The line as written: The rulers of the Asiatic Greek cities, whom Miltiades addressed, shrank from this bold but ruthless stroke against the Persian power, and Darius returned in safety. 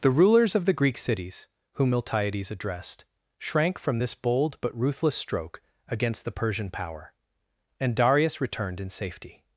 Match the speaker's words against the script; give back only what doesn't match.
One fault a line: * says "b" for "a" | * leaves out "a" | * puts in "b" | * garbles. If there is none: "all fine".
* leaves out "Asiatic"